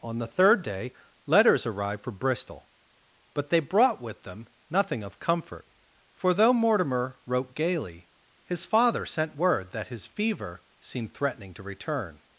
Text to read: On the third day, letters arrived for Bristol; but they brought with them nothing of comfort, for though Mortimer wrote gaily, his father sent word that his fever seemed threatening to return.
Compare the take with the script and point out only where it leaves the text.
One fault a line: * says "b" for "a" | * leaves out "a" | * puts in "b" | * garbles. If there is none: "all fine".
all fine